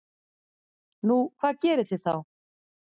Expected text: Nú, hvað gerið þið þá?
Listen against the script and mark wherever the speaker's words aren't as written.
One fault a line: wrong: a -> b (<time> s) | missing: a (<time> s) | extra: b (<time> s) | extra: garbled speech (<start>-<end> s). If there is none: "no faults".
no faults